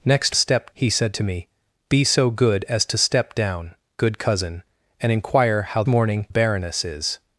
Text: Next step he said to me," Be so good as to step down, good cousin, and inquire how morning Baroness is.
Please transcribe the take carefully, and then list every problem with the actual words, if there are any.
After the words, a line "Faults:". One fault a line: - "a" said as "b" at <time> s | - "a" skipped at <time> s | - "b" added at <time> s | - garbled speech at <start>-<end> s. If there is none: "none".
Next step he said to me," Be so good as to step down, good cousin, and inquire how morning Baroness is.
Faults:
none